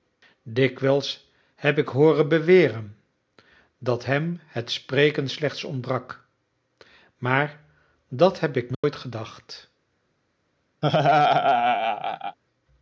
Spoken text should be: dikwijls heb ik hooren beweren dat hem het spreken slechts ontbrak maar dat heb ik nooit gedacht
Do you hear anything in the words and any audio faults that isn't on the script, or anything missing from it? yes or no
yes